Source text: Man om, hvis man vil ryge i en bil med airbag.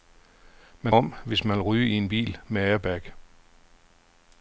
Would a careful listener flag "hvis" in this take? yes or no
no